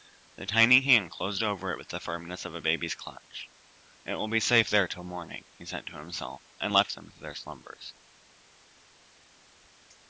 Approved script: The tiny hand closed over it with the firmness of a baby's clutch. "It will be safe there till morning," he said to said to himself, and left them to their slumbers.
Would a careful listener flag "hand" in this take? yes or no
no